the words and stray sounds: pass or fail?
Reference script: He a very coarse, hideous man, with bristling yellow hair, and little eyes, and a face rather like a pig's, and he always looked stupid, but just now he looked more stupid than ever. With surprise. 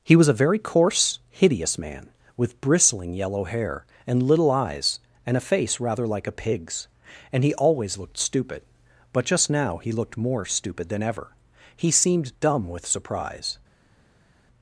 fail